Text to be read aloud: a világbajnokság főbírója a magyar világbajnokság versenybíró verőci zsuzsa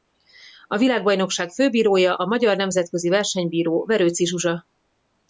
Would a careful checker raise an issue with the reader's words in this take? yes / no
yes